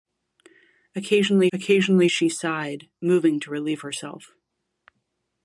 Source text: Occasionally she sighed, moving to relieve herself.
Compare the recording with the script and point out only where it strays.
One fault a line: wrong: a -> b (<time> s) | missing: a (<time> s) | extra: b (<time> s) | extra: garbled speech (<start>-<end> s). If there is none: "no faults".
extra: occasionally (1.5 s)